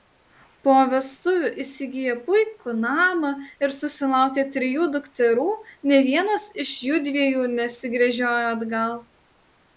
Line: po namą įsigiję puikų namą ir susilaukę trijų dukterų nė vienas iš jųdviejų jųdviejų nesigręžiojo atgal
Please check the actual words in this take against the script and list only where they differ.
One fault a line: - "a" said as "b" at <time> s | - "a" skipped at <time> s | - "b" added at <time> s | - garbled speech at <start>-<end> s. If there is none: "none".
- "namą" said as "vestuvių" at 0.9 s
- "jųdviejų" skipped at 7.5 s